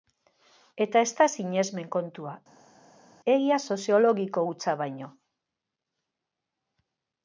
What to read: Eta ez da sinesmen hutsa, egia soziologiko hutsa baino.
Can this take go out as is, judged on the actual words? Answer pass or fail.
fail